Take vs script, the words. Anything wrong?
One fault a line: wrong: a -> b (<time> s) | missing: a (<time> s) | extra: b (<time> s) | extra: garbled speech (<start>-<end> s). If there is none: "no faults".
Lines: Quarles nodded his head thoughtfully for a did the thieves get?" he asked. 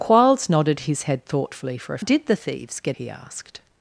no faults